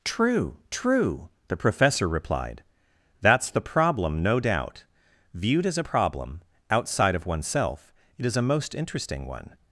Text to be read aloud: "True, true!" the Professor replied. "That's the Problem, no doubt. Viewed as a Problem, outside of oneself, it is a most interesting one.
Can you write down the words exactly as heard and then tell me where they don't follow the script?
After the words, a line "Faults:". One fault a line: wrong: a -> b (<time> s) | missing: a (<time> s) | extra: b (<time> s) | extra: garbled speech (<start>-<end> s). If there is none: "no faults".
"True, true!" the Professor replied. "That's the Problem, no doubt. Viewed as a Problem, outside of oneself, it is a most interesting one.
Faults:
no faults